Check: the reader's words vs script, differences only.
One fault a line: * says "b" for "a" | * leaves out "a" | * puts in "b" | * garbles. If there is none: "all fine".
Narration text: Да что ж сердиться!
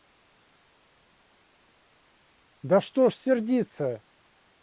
all fine